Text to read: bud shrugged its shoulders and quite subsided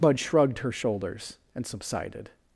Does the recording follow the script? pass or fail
fail